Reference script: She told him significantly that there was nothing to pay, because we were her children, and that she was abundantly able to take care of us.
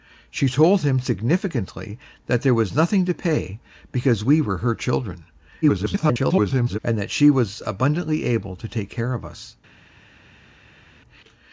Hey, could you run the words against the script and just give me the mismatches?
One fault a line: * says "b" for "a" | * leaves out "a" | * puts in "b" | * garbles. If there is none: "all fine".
* garbles